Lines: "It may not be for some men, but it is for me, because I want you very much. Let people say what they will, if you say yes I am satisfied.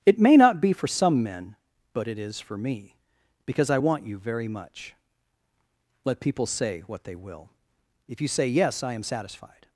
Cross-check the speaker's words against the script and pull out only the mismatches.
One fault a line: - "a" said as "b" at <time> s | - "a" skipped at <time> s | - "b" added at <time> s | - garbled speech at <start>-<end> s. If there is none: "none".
none